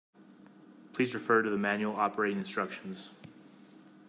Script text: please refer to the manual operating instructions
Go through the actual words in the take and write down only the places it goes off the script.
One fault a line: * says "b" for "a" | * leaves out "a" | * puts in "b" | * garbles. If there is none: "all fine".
all fine